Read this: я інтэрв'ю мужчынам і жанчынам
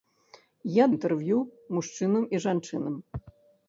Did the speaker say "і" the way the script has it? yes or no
yes